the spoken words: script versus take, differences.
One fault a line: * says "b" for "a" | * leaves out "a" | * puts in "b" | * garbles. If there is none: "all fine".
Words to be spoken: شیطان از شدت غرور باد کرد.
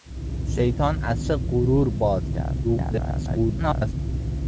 * leaves out "شدت"
* garbles